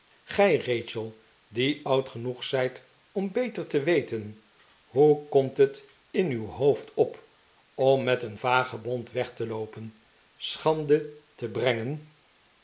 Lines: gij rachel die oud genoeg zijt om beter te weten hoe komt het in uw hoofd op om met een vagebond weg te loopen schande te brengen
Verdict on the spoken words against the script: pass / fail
pass